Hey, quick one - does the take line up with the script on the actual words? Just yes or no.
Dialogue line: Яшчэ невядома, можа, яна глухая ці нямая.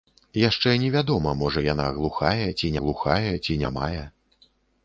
no